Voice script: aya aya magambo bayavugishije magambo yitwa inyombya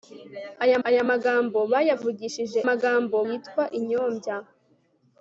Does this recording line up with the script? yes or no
yes